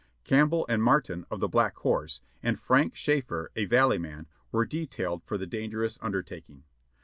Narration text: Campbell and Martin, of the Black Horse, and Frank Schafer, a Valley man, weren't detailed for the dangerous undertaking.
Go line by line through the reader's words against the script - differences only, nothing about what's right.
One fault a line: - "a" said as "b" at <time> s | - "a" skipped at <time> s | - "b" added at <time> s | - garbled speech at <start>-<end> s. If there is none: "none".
- "weren't" said as "were" at 4.5 s